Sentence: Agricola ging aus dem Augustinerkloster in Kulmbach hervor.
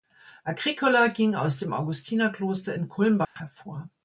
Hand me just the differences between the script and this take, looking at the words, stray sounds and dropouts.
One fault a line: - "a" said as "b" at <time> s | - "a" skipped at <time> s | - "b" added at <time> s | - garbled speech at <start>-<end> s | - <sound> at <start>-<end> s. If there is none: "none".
- dropout at 3.2-3.4 s